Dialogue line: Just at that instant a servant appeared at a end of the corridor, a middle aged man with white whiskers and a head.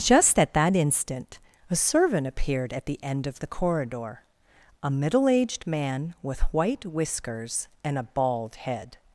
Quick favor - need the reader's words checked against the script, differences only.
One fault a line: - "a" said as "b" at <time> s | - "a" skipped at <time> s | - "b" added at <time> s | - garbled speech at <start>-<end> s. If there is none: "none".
- "a" said as "the" at 2.9 s
- "bald" added at 8.0 s